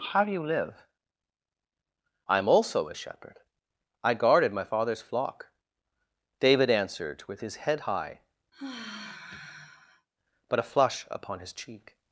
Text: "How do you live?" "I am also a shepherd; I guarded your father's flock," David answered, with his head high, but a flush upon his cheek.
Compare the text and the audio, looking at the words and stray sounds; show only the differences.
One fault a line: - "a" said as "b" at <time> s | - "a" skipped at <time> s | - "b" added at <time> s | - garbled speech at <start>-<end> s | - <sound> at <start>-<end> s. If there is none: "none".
- "your" said as "my" at 4.5 s
- sigh at 8.5-10.1 s